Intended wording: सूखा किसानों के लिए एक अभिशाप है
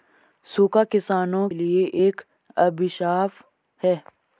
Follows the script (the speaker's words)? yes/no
no